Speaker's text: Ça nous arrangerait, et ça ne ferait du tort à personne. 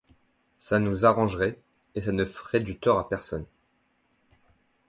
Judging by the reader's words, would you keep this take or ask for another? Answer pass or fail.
pass